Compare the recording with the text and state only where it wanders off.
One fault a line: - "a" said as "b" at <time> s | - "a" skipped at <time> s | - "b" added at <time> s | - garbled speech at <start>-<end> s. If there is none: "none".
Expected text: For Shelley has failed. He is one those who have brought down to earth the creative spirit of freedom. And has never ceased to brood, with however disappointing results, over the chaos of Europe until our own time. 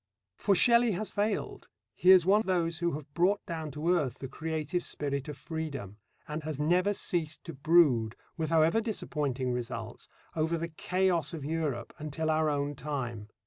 none